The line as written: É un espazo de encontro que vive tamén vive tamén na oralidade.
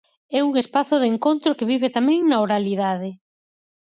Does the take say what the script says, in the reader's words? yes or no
no